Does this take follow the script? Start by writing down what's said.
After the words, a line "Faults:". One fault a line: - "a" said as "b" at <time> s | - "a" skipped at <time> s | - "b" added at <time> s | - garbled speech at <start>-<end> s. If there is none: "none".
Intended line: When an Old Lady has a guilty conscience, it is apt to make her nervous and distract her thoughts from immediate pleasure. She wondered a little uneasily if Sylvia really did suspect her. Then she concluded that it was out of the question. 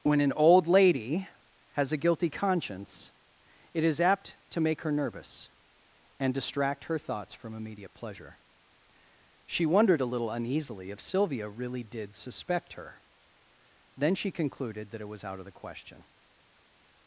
When an Old Lady has a guilty conscience, it is apt to make her nervous and distract her thoughts from immediate pleasure. She wondered a little uneasily if Sylvia really did suspect her. Then she concluded that it was out of the question.
Faults:
none